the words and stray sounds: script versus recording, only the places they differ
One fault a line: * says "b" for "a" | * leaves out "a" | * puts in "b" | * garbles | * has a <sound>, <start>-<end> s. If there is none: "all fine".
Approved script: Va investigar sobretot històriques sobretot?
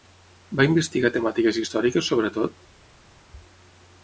* says "temàtiques" for "sobretot"